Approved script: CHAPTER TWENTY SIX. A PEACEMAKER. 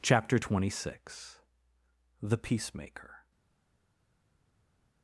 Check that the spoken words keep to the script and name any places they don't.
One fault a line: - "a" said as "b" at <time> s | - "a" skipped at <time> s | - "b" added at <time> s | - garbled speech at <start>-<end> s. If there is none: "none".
- "A" said as "THE" at 2.2 s